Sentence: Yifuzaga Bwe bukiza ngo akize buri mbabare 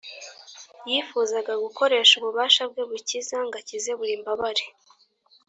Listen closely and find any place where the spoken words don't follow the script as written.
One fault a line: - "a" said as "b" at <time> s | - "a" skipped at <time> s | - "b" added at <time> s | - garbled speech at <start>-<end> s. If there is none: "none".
- "gukoresha ububasha" added at 1.6 s